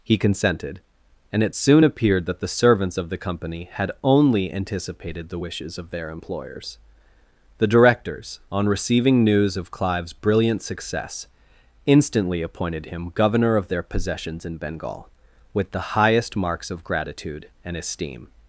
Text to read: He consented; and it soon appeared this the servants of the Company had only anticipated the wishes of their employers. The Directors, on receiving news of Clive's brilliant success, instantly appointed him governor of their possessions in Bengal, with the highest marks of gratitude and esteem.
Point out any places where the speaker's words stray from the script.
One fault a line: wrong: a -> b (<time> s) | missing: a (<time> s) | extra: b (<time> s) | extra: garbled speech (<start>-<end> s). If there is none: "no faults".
wrong: this -> that (2.3 s)